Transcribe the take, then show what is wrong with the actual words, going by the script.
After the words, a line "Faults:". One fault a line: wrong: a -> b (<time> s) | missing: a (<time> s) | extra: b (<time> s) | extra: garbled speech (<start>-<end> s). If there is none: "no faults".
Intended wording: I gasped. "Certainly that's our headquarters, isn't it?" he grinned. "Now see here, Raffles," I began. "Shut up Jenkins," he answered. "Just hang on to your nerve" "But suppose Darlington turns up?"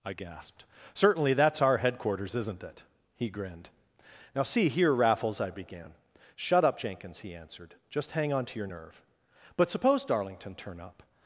I gasped. "Certainly that's our headquarters, isn't it?" he grinned. "Now see here, Raffles," I began. "Shut up Jenkins," he answered. "Just hang on to your nerve" "But suppose Darlington turn up?"
Faults:
wrong: turns -> turn (10.5 s)